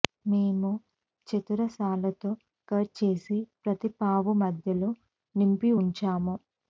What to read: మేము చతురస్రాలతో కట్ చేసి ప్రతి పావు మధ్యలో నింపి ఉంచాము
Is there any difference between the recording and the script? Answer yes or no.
no